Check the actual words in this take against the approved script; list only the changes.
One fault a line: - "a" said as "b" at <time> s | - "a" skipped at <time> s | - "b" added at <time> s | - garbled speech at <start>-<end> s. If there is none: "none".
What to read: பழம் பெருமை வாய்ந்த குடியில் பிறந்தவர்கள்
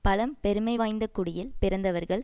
none